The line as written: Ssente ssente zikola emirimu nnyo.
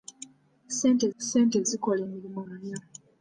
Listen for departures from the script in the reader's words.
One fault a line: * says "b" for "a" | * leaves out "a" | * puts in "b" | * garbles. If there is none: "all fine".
all fine